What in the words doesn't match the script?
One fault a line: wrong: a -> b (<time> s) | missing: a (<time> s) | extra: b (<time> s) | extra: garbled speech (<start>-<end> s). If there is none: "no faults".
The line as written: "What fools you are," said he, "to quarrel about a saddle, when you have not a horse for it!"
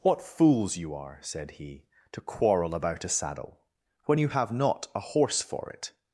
no faults